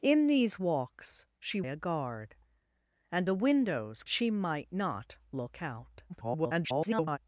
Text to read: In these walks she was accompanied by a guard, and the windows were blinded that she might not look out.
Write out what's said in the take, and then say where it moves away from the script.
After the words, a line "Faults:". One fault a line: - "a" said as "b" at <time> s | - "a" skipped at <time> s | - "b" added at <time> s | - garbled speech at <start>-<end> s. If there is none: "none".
In these walks she a guard, and the windows she might not look out. [garbled]
Faults:
- "was accompanied by" skipped at 1.6 s
- "were blinded that" skipped at 4.1 s
- garbled speech at 6.1-7.2 s